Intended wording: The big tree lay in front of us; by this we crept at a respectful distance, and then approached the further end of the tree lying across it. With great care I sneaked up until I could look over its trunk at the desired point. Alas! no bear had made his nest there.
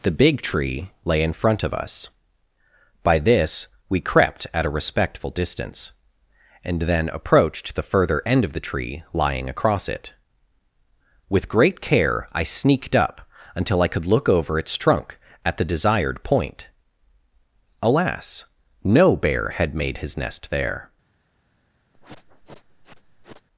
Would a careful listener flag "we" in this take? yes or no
no